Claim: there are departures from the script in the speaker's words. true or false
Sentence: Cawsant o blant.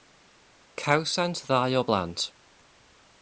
true